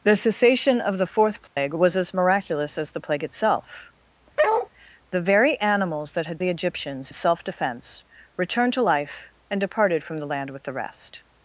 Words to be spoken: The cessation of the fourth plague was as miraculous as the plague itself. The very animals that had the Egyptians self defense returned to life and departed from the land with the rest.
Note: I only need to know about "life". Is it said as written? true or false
true